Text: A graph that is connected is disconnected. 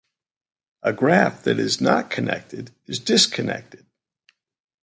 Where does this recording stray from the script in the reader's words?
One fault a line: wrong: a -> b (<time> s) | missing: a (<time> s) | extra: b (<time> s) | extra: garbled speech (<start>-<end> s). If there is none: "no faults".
extra: not (1.8 s)